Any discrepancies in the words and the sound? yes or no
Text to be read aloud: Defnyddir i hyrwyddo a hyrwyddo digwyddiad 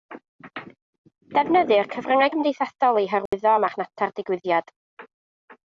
yes